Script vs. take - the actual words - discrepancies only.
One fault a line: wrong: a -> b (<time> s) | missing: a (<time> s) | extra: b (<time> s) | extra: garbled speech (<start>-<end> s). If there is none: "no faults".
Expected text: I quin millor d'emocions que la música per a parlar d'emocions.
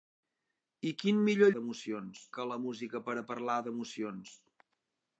no faults